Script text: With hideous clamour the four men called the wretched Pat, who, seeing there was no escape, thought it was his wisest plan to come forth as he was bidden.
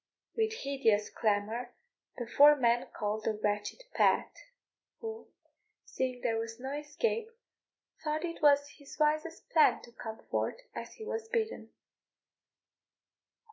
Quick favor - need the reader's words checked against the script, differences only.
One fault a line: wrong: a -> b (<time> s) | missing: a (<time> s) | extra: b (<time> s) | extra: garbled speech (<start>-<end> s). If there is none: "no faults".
no faults